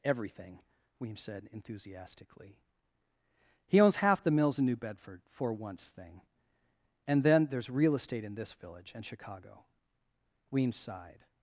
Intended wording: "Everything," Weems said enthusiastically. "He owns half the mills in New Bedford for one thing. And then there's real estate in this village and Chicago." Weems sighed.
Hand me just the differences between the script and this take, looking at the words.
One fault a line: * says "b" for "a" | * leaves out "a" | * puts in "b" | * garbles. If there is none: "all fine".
* says "once" for "one"